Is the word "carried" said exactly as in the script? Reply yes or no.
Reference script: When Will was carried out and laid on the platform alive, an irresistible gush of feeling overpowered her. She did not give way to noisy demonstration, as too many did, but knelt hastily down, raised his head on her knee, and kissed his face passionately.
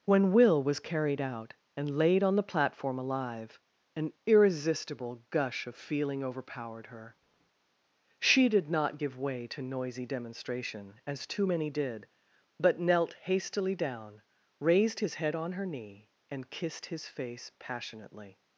yes